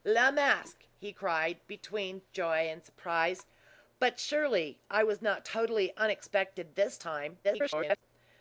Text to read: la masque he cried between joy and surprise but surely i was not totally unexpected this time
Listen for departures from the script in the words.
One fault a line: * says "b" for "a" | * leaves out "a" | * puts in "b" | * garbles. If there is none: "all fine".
* garbles